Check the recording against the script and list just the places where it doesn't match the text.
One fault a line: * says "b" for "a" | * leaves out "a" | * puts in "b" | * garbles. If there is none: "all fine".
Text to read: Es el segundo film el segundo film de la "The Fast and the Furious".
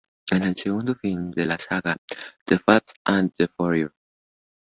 * leaves out "el segundo film"
* puts in "saga"